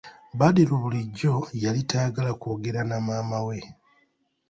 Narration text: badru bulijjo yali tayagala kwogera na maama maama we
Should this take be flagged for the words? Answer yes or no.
yes